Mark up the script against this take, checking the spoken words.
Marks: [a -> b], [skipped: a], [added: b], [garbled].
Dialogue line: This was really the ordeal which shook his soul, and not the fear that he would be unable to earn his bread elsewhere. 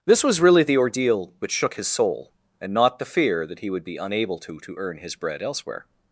This was really the ordeal which shook his soul, and not the fear that he would be unable to [added: to] earn his bread elsewhere.